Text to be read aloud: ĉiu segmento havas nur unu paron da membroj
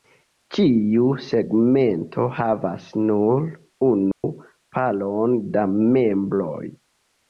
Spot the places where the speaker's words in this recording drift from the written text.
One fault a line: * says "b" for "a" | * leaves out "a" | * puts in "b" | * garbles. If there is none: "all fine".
all fine